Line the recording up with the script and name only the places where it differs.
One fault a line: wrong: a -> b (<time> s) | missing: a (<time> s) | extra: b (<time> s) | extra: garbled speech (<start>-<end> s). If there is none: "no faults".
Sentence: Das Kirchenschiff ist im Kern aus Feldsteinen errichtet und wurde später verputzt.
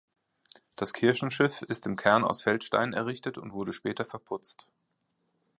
no faults